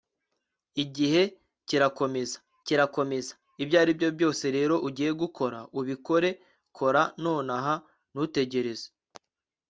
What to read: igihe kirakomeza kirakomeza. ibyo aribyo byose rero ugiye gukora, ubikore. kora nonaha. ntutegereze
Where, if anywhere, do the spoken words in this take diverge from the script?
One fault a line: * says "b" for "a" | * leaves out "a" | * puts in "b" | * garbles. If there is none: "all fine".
all fine